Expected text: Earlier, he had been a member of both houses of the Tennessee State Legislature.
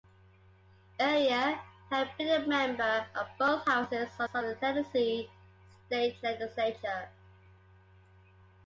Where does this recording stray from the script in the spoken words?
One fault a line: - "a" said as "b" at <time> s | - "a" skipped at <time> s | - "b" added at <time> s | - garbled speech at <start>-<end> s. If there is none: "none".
- "of" added at 4.3 s